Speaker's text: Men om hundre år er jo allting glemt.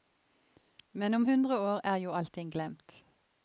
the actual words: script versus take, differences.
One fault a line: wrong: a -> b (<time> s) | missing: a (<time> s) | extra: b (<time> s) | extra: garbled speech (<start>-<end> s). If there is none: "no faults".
no faults